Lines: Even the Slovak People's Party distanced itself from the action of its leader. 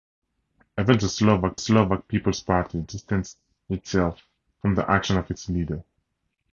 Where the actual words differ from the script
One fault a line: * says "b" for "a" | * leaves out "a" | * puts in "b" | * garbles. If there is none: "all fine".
* puts in "Slovak"